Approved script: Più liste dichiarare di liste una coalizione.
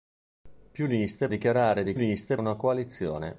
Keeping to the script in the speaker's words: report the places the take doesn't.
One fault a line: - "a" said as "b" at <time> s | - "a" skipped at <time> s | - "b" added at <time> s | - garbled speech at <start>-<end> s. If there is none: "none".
none